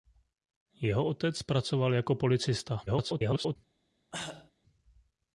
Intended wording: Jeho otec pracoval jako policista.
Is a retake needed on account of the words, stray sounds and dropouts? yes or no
yes